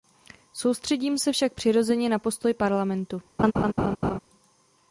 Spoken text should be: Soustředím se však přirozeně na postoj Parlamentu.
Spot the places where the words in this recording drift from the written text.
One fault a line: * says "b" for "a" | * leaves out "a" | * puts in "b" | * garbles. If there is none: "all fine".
all fine